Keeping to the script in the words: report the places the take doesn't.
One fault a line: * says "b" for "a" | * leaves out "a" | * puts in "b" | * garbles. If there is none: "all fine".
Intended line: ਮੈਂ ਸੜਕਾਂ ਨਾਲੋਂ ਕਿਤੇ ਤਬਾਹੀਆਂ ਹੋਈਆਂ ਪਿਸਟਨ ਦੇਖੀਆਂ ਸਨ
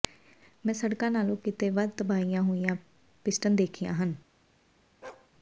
* puts in "ਵੱਧ"
* says "ਹਨ" for "ਸਨ"